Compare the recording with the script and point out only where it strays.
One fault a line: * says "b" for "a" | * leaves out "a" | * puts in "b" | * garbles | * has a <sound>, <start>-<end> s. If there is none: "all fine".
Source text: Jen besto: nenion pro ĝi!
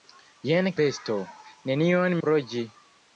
all fine